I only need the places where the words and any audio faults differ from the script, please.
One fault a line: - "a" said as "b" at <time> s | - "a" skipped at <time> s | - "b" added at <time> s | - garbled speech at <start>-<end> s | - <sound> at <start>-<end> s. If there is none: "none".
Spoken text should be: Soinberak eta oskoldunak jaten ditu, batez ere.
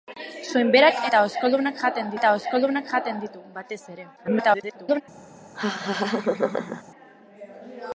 - "eta oskoldunak jaten" added at 2.2 s
- garbled speech at 4.2-5.0 s
- laugh at 5.5-6.8 s